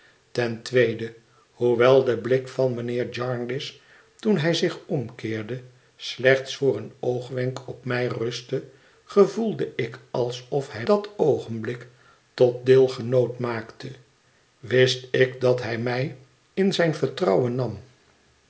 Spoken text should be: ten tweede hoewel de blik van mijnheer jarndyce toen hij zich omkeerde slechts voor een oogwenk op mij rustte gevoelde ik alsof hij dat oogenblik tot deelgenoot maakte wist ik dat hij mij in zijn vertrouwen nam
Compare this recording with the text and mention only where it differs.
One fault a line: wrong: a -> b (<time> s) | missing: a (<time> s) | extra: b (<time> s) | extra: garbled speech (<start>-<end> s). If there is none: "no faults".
no faults